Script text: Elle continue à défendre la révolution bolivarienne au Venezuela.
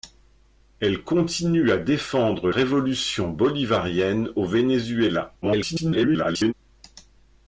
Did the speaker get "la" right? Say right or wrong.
wrong